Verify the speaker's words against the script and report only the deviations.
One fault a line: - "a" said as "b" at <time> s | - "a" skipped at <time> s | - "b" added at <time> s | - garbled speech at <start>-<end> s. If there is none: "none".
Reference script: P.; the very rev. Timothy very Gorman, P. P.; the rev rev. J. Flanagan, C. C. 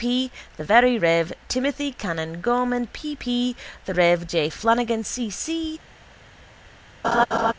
- "very" said as "canon" at 1.9 s
- "rev" skipped at 4.3 s